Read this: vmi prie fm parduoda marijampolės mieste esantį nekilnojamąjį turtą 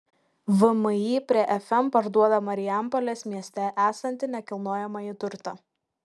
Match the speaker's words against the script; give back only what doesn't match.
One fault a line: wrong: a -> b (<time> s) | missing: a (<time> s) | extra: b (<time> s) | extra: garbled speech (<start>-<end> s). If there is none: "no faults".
no faults